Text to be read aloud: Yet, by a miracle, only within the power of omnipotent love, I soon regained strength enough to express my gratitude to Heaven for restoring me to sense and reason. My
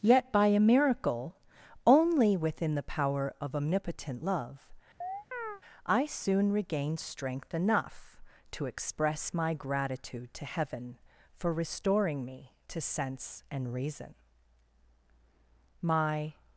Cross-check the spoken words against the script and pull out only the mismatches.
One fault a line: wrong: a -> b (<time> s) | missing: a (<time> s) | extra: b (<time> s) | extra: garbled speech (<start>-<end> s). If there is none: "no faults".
no faults